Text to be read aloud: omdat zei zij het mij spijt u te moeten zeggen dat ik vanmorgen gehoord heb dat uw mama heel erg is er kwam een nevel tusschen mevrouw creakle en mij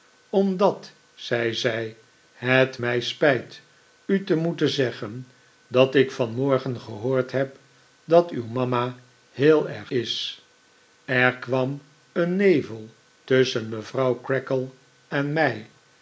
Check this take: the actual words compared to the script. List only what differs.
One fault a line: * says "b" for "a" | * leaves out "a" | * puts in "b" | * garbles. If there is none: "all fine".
all fine